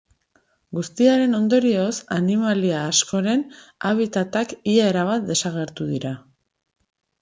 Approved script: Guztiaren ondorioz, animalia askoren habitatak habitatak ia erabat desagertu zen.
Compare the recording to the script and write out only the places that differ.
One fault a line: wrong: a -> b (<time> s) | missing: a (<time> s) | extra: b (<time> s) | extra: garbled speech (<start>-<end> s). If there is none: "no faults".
missing: habitatak (4.6 s)
wrong: zen -> dira (6.0 s)